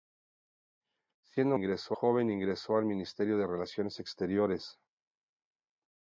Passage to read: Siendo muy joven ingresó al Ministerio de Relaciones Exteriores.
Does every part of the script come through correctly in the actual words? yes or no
no